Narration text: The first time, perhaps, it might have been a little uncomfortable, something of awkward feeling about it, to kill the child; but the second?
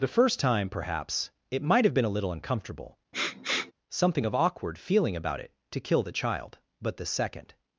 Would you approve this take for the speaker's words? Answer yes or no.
yes